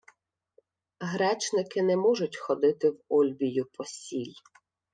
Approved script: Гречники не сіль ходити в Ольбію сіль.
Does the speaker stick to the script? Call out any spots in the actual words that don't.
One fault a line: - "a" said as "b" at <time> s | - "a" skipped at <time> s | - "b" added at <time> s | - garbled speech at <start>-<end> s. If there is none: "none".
- "сіль" said as "можуть" at 2.0 s
- "по" added at 3.7 s